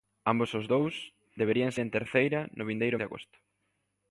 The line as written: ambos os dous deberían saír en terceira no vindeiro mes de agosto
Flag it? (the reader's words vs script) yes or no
yes